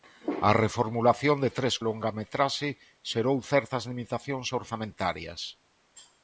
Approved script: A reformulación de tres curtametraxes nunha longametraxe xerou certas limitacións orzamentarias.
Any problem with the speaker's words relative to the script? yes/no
yes